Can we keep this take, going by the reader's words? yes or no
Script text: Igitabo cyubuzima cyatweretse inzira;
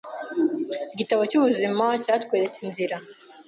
yes